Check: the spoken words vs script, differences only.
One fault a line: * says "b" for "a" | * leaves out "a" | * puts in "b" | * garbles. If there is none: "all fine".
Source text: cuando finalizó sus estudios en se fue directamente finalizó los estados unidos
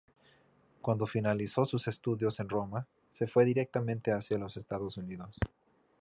* puts in "roma"
* says "hacia" for "finalizó"